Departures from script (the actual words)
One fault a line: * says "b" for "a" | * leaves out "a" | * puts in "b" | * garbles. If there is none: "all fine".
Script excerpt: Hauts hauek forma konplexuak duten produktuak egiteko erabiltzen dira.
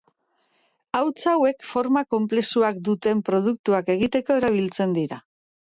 all fine